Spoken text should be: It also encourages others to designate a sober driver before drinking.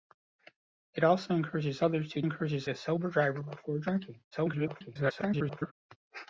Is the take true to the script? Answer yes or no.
no